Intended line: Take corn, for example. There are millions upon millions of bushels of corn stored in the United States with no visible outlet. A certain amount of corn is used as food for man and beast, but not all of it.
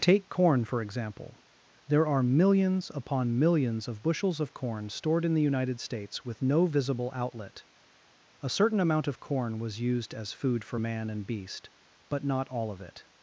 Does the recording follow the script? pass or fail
fail